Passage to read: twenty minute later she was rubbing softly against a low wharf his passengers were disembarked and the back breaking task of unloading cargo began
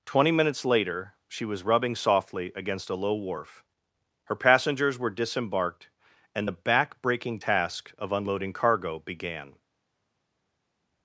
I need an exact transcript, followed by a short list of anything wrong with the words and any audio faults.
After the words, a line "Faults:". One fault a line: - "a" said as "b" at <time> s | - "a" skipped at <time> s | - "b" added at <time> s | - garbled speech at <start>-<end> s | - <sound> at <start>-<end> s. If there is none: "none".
twenty minutes later she was rubbing softly against a low wharf her passengers were disembarked and the back breaking task of unloading cargo began
Faults:
- "minute" said as "minutes" at 0.3 s
- "his" said as "her" at 4.2 s